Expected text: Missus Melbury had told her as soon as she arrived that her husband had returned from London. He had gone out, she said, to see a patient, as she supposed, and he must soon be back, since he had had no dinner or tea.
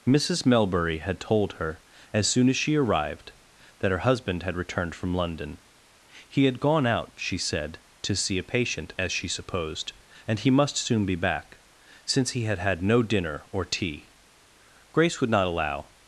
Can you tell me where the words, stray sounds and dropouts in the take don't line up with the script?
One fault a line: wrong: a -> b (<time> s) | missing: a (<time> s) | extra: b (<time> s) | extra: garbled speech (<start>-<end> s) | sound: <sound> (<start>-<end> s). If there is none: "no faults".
extra: Grace would not allow (14.9 s)